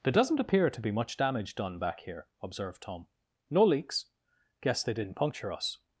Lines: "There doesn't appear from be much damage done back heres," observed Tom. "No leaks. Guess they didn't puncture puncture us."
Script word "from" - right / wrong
wrong